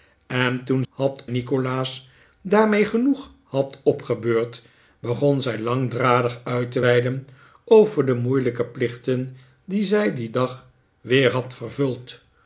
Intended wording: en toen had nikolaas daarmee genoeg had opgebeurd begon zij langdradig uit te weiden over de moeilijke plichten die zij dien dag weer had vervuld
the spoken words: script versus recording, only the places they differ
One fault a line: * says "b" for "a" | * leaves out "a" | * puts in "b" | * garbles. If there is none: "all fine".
all fine